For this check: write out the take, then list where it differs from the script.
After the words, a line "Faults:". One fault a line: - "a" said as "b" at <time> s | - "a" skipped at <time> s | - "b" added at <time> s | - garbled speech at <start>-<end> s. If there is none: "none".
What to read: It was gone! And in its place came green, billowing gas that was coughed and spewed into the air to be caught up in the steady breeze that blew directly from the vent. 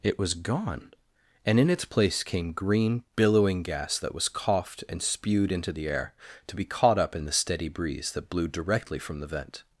It was gone! And in its place came green, billowing gas that was coughed and spewed into the air to be caught up in the steady breeze that blew directly from the vent.
Faults:
none